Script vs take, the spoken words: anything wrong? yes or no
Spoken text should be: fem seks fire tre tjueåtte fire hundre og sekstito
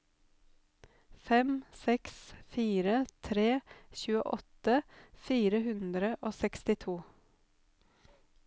no